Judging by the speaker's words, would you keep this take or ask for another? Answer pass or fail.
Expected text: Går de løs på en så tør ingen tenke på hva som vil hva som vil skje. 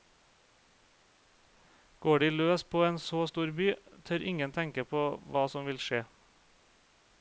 fail